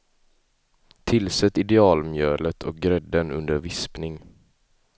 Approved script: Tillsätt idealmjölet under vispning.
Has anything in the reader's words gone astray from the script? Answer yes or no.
yes